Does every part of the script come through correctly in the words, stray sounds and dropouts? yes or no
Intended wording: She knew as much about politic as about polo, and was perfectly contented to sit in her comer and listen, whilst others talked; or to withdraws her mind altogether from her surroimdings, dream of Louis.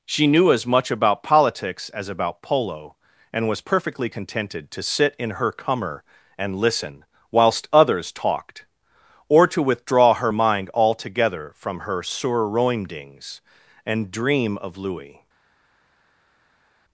no